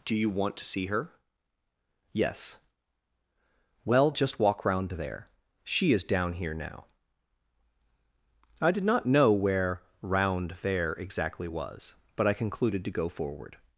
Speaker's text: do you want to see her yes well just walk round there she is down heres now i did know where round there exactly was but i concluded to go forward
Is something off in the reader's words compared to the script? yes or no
yes